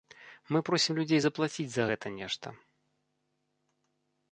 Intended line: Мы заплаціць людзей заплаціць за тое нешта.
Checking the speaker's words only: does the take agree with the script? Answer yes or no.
no